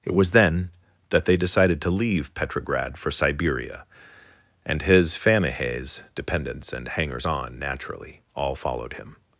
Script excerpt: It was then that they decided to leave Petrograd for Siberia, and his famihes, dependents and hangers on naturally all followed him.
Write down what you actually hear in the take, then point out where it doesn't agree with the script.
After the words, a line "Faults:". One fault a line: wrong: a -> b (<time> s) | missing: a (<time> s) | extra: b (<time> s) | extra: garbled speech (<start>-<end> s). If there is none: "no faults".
It was then that they decided to leave Petrograd for Siberia, and his famihes, dependents and hangers on naturally all followed him.
Faults:
no faults